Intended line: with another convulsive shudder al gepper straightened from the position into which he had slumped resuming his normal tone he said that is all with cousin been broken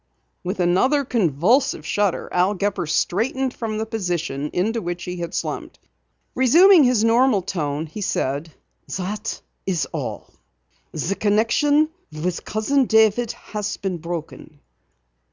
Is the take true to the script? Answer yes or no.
no